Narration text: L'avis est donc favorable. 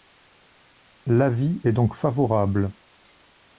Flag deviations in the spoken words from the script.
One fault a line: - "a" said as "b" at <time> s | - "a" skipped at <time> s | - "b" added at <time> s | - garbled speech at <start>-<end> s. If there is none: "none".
none